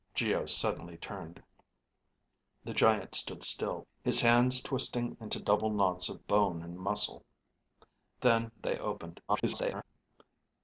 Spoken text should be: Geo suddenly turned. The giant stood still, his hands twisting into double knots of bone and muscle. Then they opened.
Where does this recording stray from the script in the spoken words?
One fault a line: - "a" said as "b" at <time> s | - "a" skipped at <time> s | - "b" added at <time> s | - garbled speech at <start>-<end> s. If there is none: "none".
- garbled speech at 9.3-9.8 s